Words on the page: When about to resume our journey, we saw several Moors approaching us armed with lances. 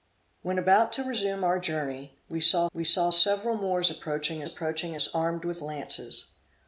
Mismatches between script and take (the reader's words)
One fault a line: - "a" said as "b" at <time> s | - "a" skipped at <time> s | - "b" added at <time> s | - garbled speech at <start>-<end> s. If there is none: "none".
- "we saw" added at 2.7 s
- "approaching" added at 4.4 s